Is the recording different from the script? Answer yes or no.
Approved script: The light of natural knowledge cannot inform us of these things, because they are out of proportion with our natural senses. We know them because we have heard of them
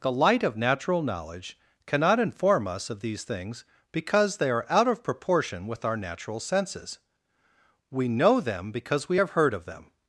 no